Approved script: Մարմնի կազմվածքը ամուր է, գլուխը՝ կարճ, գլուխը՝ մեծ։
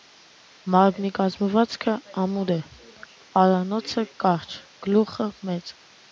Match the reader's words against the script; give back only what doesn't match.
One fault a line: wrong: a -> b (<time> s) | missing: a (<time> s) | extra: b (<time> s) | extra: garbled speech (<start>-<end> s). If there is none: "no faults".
wrong: գլուխը -> պարանոցը (3.4 s)